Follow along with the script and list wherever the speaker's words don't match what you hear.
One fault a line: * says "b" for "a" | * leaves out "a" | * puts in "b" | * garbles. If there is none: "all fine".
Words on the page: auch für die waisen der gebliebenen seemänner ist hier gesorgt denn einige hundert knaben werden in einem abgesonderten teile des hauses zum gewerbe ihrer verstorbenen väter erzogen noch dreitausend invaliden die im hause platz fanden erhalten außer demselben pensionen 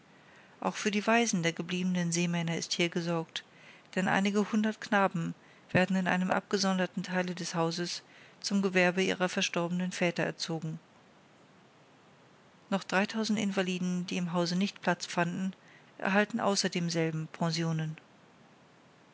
* puts in "nicht"